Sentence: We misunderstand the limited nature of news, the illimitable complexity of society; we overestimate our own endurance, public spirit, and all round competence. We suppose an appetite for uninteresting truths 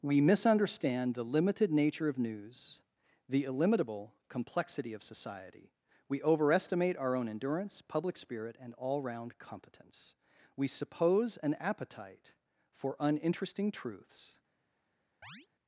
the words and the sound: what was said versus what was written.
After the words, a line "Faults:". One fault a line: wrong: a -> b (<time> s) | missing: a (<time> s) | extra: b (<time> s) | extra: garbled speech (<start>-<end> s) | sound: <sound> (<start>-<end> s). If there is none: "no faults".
We misunderstand the limited nature of news, the illimitable complexity of society; we overestimate our own endurance, public spirit, and all round competence. We suppose an appetite for uninteresting truths
Faults:
sound: chirp (15.2-15.5 s)